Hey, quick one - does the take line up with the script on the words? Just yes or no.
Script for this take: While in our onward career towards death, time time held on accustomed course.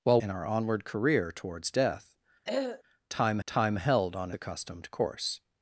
yes